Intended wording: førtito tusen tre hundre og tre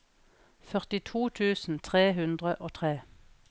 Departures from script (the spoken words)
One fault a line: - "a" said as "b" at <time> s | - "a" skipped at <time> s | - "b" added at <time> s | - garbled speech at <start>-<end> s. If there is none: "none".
none